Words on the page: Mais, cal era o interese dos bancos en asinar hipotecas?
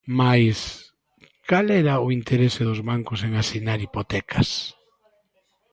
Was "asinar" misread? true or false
false